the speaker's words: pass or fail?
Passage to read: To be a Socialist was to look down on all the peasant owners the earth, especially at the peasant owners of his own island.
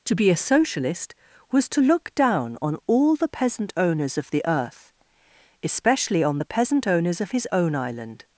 fail